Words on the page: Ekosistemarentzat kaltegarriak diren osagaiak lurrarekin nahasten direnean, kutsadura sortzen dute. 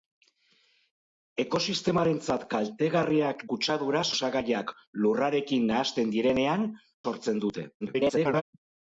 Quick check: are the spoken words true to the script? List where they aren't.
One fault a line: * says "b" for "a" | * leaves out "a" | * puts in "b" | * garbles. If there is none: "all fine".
* says "kutsadura" for "diren"
* leaves out "kutsadura"
* garbles